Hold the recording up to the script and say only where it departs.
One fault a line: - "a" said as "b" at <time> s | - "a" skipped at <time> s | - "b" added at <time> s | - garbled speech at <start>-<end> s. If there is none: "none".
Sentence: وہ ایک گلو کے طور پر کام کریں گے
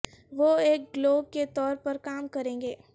none